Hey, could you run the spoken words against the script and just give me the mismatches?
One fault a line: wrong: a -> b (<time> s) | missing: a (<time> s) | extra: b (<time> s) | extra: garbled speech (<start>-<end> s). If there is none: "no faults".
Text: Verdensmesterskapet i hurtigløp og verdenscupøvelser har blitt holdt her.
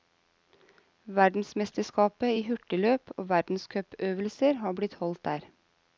wrong: her -> der (5.2 s)